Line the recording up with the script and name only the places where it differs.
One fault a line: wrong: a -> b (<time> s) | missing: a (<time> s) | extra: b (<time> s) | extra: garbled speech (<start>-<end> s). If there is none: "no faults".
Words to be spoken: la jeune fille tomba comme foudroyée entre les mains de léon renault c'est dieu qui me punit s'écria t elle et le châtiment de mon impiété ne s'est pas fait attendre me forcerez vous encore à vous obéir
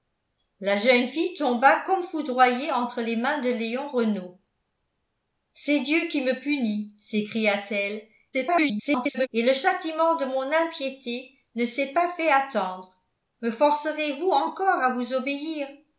extra: garbled speech (8.3-9.3 s)